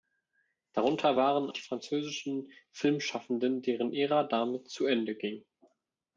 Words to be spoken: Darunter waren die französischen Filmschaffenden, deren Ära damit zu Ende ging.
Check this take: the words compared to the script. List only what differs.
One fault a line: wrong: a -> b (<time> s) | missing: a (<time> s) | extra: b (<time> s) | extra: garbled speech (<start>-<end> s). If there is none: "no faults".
no faults